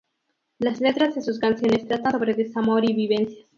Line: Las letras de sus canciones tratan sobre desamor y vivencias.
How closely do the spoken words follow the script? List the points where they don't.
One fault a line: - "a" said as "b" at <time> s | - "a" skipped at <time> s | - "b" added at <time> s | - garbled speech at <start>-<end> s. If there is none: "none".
none